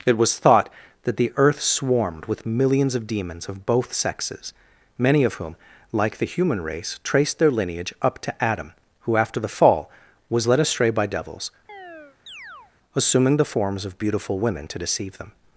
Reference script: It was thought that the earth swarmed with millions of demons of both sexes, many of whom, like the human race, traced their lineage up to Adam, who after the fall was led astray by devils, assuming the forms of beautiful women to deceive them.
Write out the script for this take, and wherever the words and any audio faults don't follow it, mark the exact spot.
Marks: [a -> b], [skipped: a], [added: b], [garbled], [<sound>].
It was thought that the earth swarmed with millions of demons of both sexes, many of whom, like the human race, traced their lineage up to Adam, who after the fall was led astray by devils, [chirp] assuming the forms of beautiful women to deceive them.